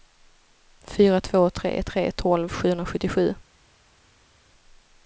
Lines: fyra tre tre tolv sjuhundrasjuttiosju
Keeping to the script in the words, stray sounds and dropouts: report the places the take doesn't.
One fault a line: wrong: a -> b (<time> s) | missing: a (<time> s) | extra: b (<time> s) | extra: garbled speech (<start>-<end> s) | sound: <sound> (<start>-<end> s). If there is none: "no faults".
extra: två (1.2 s)